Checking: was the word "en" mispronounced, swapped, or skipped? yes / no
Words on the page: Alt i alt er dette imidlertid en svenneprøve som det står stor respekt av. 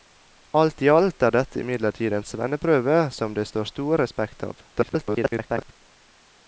no